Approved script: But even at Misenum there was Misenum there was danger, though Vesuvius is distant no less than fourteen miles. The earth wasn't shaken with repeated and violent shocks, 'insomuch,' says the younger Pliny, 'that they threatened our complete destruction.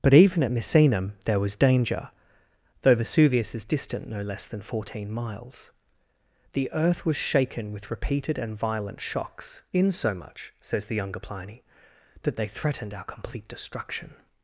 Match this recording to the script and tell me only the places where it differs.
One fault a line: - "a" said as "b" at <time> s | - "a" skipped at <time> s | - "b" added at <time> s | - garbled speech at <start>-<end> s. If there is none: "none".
- "Misenum there was" skipped at 1.6 s
- "wasn't" said as "was" at 7.1 s